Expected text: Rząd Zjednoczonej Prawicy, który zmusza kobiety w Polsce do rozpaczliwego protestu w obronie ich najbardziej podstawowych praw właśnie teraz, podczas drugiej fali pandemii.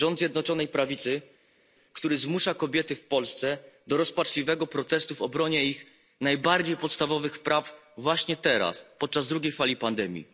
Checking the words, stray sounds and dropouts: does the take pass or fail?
pass